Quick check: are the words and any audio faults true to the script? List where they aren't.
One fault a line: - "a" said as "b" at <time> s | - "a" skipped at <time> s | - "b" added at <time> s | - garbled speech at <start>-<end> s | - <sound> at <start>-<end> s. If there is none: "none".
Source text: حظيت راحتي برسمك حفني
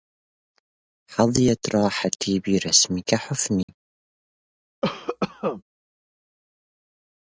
- dropout at 3.6-3.7 s
- cough at 4.8-5.6 s